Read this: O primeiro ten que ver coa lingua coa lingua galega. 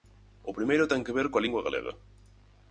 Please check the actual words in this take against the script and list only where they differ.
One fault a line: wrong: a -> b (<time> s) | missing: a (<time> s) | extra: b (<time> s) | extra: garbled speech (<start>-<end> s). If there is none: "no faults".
missing: coa lingua (1.6 s)